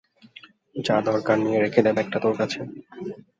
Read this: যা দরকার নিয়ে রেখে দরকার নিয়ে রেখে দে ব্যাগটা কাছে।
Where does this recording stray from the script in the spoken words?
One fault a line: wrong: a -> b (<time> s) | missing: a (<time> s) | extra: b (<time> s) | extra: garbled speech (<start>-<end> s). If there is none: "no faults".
missing: দরকার নিয়ে রেখে (1.8 s)
extra: তোর (2.2 s)